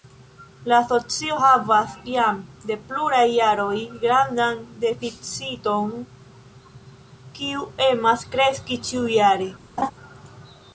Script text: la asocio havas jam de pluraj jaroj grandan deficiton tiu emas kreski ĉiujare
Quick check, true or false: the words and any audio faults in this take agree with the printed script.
false